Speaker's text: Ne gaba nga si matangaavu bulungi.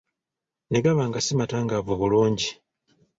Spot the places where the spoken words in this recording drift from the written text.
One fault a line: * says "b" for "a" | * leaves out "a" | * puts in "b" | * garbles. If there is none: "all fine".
all fine